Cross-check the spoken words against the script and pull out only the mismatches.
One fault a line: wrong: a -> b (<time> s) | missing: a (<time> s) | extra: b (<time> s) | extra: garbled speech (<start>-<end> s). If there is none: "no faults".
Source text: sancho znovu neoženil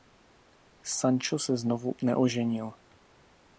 extra: se (1.4 s)